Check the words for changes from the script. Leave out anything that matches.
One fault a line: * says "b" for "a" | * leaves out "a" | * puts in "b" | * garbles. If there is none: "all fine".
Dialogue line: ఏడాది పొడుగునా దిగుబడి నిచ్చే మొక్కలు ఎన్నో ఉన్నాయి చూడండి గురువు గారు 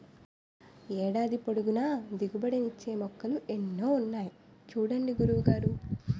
all fine